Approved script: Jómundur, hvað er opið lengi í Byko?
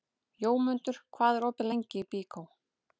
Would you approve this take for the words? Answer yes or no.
yes